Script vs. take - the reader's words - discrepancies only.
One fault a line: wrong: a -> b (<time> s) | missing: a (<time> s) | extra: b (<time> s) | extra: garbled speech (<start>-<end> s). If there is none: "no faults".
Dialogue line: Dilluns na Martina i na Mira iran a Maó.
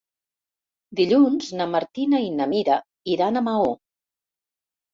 no faults